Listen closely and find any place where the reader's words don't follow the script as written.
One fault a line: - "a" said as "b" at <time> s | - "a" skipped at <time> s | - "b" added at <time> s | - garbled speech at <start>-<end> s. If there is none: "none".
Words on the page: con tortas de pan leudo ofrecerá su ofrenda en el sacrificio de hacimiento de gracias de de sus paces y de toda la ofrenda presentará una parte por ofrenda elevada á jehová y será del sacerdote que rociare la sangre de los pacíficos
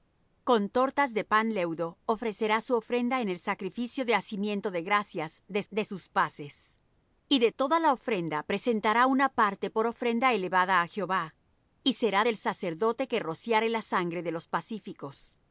none